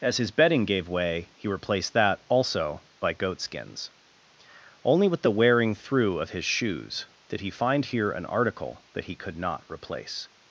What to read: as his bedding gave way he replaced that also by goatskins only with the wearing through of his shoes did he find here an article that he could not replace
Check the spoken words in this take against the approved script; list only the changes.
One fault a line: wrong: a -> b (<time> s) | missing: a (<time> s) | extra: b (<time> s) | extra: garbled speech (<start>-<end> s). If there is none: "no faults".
no faults